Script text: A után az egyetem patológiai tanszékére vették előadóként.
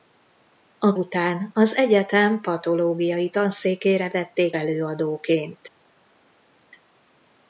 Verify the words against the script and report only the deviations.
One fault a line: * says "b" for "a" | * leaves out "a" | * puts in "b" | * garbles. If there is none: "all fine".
all fine